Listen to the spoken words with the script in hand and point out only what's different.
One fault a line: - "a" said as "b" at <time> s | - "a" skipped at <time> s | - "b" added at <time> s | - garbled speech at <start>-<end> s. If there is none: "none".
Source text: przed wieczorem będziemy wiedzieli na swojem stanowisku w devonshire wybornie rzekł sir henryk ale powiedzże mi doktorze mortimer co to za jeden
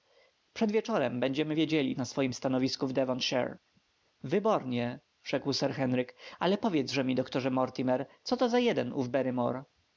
none